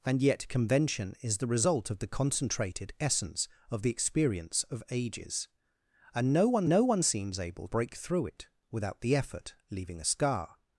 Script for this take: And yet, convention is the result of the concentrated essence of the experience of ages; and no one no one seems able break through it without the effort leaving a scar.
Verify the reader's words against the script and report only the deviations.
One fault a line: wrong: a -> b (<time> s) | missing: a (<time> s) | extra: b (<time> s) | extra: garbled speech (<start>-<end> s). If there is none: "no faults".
no faults